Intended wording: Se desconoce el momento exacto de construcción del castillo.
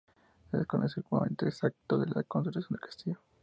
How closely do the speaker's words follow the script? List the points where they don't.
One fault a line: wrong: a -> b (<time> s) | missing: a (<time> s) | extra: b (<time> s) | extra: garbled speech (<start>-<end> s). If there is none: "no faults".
extra: la (2.1 s)